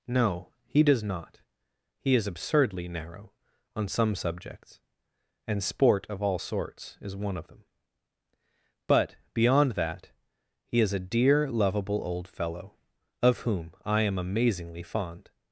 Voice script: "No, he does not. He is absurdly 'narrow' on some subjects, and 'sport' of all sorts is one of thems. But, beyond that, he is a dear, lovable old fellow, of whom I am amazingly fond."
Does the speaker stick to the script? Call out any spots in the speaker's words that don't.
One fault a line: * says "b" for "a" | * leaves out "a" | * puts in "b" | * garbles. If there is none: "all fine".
* says "them" for "thems"